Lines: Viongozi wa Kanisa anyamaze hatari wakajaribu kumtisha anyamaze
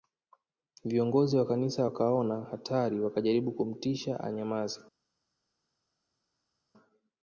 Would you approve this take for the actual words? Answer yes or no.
no